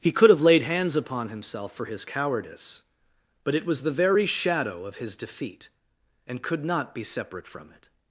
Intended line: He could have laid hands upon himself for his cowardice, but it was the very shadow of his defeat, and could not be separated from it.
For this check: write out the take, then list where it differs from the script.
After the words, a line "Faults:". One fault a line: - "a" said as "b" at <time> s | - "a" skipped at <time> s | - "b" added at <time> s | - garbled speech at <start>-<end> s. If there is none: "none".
He could have laid hands upon himself for his cowardice, but it was the very shadow of his defeat, and could not be separate from it.
Faults:
- "separated" said as "separate" at 7.0 s